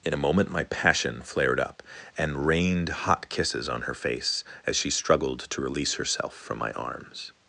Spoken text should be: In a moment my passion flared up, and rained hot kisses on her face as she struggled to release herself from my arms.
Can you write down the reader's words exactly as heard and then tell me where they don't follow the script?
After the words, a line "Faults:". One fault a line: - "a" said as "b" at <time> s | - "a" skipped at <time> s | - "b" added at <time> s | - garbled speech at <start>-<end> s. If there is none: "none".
In a moment my passion flared up, and rained hot kisses on her face as she struggled to release herself from my arms.
Faults:
none